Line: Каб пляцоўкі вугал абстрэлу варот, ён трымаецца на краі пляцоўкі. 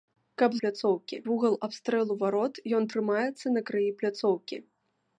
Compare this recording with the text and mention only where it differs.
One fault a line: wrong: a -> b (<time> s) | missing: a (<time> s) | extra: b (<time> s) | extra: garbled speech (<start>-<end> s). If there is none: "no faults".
no faults